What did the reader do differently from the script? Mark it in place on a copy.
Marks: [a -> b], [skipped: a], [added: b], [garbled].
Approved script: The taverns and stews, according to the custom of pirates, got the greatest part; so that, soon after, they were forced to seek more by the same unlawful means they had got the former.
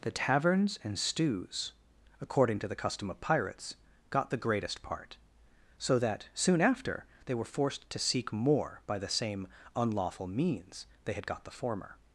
The taverns and stews, according to the custom of pirates, got the greatest part; so that, soon after, they were forced to seek more by the same unlawful means they had got the former.